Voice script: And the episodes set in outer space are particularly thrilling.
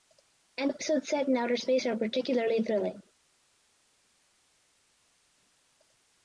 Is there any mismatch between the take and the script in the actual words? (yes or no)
yes